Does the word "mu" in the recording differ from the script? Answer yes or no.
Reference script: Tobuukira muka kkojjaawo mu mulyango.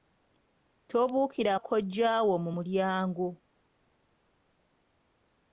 no